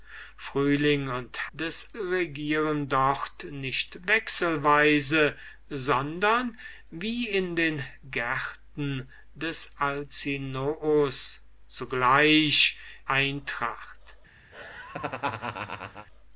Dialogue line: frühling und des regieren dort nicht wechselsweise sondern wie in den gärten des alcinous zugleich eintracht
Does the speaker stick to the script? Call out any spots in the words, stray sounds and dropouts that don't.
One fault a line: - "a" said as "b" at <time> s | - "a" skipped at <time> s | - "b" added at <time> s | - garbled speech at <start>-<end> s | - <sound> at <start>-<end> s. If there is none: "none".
- laugh at 14.5-16.1 s